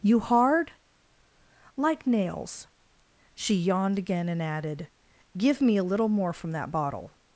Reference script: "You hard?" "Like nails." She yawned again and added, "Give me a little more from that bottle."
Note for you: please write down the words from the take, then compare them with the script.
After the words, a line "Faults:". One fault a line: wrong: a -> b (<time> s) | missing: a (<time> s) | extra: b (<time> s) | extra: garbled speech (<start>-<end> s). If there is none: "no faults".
"You hard?" "Like nails." She yawned again and added, "Give me a little more from that bottle."
Faults:
no faults